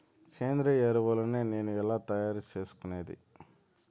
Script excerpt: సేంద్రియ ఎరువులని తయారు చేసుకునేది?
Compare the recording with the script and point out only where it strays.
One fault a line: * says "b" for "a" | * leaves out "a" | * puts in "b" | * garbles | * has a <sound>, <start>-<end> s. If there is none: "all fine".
* puts in "నేను ఎలా"